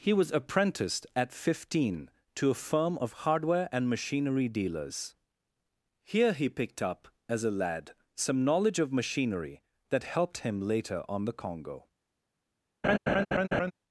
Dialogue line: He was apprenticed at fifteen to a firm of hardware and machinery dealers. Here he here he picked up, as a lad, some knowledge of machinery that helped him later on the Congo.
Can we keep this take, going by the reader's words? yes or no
no